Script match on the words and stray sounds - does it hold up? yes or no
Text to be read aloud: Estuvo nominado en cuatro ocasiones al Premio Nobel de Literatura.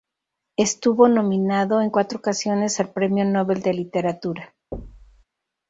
no